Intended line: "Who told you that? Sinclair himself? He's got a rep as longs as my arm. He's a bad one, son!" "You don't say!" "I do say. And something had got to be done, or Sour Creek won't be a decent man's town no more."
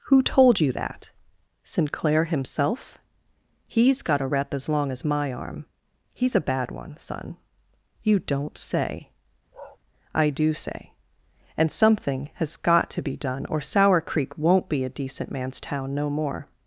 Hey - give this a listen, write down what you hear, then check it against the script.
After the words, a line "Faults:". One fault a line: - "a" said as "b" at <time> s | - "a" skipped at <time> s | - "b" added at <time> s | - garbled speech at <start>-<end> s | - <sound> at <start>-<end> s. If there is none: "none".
"Who told you that? Sinclair himself? He's got a rep as long as my arm. He's a bad one, son!" "You don't say!" "I do say. And something has got to be done, or Sour Creek won't be a decent man's town no more."
Faults:
- "longs" said as "long" at 4.7 s
- bark at 9.5-9.8 s
- "had" said as "has" at 12.4 s